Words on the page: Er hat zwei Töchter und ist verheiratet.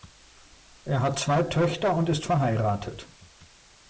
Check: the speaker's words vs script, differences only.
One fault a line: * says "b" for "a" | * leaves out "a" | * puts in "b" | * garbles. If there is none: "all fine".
all fine